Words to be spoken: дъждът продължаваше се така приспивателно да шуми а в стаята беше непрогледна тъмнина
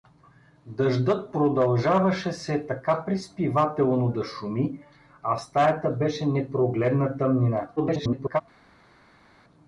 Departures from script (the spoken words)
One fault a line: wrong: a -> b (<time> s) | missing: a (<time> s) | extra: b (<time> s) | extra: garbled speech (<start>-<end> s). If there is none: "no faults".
extra: garbled speech (7.8-8.4 s)